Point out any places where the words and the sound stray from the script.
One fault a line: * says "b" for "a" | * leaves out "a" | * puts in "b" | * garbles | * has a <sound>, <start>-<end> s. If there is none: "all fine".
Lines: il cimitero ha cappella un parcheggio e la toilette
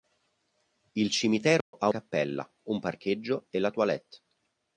* has a dropout, 1.6-1.7 s